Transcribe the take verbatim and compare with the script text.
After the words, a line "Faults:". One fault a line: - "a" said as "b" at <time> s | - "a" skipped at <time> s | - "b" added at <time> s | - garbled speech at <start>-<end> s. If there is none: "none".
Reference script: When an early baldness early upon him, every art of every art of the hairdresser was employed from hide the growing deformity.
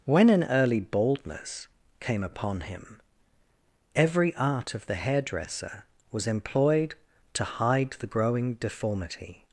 When an early baldness came upon him, every art of the hairdresser was employed to hide the growing deformity.
Faults:
- "early" said as "came" at 2.0 s
- "every art of" skipped at 4.8 s
- "from" said as "to" at 7.3 s